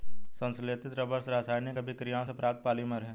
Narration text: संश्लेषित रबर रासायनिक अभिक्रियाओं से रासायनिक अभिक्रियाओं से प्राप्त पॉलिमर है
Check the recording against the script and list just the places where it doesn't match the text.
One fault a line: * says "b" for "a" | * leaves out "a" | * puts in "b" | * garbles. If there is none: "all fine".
* leaves out "रासायनिक अभिक्रियाओं से"